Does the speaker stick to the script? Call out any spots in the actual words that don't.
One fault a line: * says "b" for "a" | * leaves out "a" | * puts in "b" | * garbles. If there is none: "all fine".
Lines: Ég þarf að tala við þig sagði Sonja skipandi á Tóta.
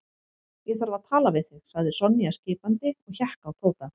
* puts in "og hékk"